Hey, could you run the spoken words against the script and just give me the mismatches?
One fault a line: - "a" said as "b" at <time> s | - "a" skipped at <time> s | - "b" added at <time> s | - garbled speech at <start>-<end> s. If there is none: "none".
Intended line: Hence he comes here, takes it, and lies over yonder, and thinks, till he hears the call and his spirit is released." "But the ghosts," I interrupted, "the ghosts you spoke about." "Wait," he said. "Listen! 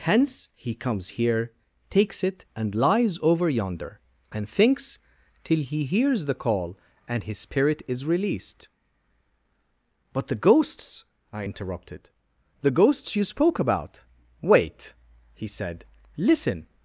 none